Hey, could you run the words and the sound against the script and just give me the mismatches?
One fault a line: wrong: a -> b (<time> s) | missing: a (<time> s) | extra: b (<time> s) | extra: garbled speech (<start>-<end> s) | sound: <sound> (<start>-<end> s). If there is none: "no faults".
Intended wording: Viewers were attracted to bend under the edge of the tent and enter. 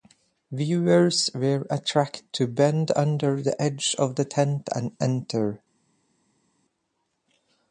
no faults